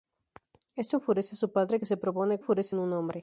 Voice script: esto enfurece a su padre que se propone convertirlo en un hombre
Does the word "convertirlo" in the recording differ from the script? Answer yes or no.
yes